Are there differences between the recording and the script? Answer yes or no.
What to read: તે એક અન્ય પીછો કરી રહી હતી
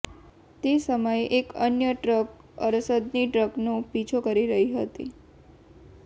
yes